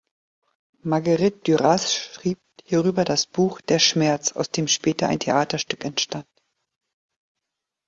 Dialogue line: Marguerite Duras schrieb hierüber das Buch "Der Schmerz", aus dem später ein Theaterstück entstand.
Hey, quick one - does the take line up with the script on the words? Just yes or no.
yes